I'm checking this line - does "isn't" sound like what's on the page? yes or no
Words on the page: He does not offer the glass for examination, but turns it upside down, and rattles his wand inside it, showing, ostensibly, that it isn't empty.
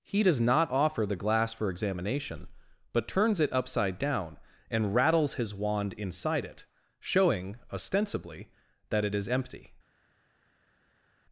no